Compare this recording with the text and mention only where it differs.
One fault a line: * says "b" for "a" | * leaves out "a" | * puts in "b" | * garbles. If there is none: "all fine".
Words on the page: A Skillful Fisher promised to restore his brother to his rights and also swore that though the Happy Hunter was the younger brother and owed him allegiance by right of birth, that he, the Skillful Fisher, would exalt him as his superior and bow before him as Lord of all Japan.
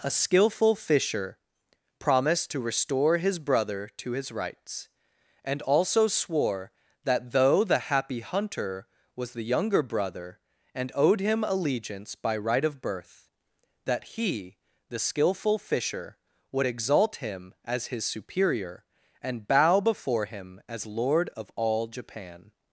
all fine